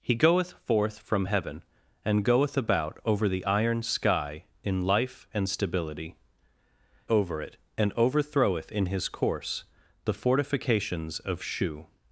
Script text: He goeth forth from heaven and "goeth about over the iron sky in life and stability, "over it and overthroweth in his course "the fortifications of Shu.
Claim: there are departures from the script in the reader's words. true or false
false